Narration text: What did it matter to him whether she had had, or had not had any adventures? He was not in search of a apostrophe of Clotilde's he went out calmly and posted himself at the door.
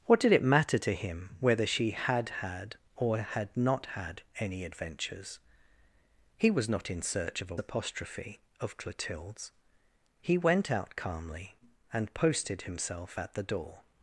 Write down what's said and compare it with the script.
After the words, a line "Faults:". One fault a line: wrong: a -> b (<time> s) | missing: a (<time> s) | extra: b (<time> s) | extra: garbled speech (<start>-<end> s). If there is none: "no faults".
What did it matter to him whether she had had, or had not had any adventures? He was not in search of a apostrophe of Clotilde's he went out calmly and posted himself at the door.
Faults:
no faults